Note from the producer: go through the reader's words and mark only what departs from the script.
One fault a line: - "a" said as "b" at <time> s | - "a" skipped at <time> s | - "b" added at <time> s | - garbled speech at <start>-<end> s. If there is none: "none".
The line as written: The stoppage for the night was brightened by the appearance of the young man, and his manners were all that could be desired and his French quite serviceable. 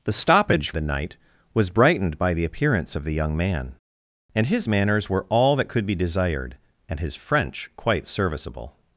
- "for" skipped at 0.7 s